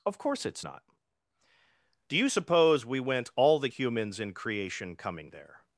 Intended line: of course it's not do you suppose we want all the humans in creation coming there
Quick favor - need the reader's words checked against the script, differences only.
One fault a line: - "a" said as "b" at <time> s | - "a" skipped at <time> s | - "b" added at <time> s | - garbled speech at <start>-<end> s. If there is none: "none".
- "want" said as "went" at 3.0 s